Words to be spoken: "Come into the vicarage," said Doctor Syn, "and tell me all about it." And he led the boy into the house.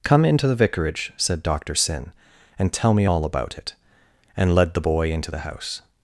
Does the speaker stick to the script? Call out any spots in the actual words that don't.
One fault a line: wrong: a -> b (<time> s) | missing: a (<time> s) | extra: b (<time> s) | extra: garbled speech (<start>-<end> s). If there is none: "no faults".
missing: he (4.5 s)